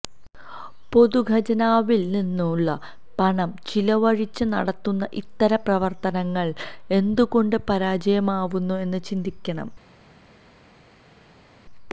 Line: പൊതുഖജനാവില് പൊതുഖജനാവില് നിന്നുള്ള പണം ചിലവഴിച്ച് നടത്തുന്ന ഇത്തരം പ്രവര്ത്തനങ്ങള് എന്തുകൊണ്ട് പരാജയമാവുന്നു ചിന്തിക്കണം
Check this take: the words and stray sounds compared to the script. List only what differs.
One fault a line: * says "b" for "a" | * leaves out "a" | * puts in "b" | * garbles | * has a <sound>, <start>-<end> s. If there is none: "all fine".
* leaves out "പൊതുഖജനാവില്"
* puts in "എന്ന്"